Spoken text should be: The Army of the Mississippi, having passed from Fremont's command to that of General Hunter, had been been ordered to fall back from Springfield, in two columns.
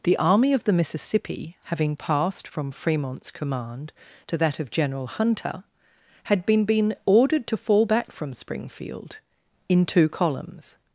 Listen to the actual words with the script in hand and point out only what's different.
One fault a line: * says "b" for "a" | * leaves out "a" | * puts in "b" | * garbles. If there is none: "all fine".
all fine